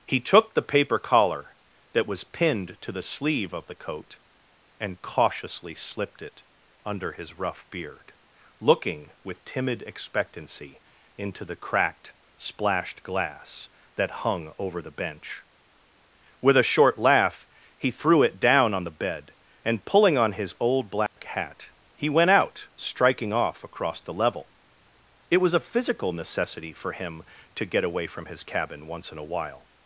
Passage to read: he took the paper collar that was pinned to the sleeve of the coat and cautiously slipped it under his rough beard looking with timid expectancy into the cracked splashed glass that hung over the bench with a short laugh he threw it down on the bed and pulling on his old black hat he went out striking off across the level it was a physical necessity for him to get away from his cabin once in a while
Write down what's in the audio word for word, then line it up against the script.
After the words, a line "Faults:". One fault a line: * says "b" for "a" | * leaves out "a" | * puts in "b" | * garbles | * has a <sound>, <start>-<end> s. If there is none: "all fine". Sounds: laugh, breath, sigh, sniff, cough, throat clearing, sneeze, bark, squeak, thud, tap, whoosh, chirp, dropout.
he took the paper collar that was pinned to the sleeve of the coat and cautiously slipped it under his rough beard looking with timid expectancy into the cracked splashed glass that hung over the bench with a short laugh he threw it down on the bed and pulling on his old black hat he went out striking off across the level it was a physical necessity for him to get away from his cabin once in a while
Faults:
* has a dropout, 21.1-21.2 s